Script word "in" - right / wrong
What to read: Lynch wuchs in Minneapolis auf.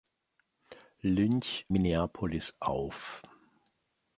wrong